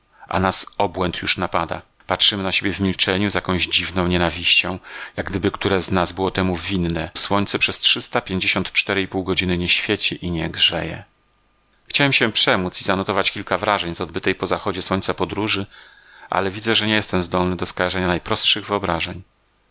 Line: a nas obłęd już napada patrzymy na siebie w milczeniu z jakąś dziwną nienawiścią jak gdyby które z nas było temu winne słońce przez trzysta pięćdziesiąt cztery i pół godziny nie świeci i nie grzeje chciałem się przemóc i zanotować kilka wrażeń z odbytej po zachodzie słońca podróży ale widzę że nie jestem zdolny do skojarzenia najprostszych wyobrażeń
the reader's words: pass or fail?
pass